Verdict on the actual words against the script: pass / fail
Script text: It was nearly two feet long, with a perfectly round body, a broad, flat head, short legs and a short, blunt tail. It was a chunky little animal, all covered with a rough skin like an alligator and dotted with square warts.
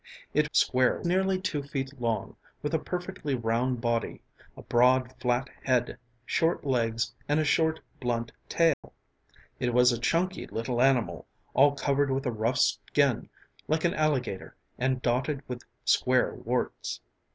fail